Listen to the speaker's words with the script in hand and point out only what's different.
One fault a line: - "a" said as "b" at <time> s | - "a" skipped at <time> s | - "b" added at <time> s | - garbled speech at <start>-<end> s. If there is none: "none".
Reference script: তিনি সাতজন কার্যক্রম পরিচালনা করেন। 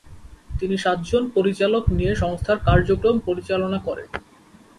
- "পরিচালক নিয়ে সংস্থার" added at 1.4 s